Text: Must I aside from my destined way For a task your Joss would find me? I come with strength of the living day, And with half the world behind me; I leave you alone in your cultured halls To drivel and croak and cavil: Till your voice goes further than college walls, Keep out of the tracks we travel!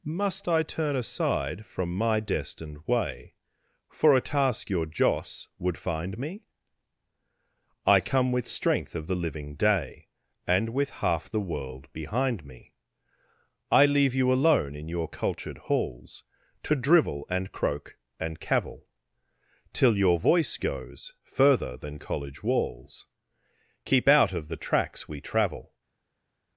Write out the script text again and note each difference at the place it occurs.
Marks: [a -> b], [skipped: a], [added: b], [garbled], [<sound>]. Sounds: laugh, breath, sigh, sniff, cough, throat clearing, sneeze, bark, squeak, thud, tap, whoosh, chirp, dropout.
Must I [added: turn] aside from my destined way For a task your Joss would find me? I come with strength of the living day, And with half the world behind me; I leave you alone in your cultured halls To drivel and croak and cavil: Till your voice goes further than college walls, Keep out of the tracks we travel!